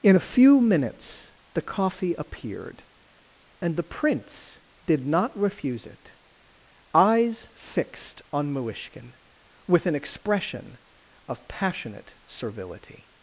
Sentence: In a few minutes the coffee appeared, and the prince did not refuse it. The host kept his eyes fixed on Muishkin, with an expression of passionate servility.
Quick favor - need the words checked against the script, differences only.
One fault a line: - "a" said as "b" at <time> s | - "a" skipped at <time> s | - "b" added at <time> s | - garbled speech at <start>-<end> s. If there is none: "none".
- "The host kept his" skipped at 6.1 s